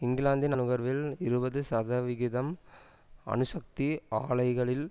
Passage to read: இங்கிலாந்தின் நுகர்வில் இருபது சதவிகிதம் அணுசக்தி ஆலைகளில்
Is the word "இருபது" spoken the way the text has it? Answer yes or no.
yes